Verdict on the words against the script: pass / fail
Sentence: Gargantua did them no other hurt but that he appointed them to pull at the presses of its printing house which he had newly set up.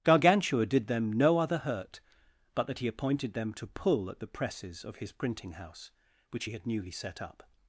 fail